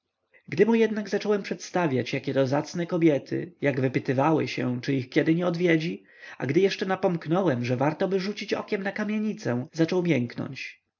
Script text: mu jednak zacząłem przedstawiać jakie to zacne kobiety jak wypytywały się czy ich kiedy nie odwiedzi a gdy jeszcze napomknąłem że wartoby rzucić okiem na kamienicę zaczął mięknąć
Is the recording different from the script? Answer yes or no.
no